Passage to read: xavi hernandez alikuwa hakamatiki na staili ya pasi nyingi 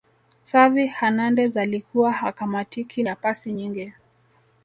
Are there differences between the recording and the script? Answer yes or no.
yes